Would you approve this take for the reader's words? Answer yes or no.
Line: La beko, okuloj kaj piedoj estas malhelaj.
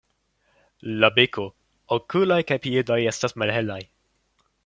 yes